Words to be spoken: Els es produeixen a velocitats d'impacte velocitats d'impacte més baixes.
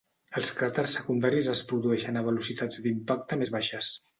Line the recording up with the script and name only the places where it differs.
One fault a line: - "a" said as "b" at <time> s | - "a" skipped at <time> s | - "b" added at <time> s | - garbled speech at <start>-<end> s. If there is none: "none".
- "cràters secundaris" added at 0.6 s
- "velocitats d'impacte" skipped at 3.4 s